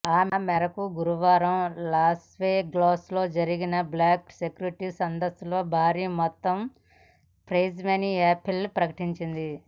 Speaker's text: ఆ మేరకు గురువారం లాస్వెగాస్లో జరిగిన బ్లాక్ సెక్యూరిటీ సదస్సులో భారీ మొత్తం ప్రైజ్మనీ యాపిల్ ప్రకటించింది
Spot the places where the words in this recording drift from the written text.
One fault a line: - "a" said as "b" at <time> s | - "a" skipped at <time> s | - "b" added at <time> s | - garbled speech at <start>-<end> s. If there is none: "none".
none